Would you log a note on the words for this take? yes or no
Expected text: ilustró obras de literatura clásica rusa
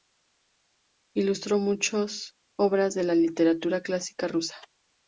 yes